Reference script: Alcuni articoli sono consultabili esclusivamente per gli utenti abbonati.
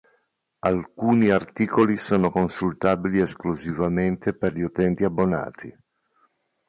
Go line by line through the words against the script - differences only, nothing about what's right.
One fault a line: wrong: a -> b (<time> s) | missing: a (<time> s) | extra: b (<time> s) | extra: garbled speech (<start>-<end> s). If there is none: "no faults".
no faults